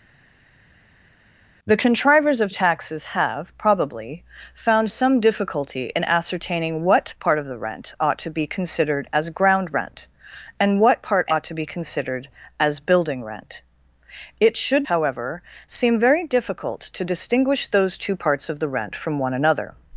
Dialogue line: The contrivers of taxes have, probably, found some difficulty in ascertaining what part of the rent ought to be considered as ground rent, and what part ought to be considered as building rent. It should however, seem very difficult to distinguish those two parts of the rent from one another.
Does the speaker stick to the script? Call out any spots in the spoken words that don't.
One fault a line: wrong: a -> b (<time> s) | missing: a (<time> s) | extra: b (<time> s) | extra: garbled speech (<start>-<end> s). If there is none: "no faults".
no faults